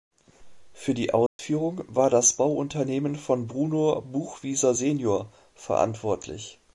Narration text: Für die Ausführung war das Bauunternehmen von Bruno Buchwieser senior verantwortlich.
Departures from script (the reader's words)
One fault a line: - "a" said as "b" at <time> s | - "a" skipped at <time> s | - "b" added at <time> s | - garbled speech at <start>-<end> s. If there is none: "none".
none